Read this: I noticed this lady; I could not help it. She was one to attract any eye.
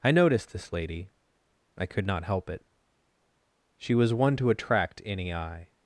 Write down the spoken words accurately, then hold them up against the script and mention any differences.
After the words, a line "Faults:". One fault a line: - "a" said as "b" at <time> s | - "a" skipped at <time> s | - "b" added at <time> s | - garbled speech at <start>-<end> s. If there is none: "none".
I noticed this lady; I could not help it. She was one to attract any eye.
Faults:
none